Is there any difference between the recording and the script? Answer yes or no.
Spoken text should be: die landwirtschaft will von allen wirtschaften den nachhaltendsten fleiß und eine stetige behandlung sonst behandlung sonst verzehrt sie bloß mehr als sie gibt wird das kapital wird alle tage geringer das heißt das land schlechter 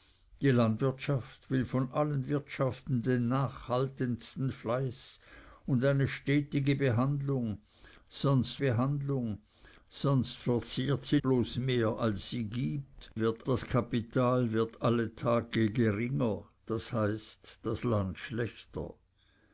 no